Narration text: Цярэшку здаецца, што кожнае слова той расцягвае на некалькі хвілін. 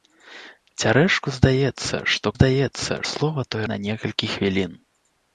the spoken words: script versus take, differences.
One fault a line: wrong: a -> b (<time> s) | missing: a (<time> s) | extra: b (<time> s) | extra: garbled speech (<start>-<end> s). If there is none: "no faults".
wrong: кожнае -> здаецца (2.3 s)
missing: расцягвае (3.6 s)